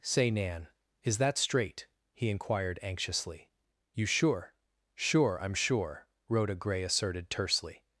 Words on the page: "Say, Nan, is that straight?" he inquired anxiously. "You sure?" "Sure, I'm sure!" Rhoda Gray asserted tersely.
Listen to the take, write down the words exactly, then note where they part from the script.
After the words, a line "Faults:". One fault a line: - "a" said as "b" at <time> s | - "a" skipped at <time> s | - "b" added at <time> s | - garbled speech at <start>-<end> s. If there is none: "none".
"Say, Nan, is that straight?" he inquired anxiously. "You sure?" "Sure, I'm sure!" Rhoda Gray asserted tersely.
Faults:
none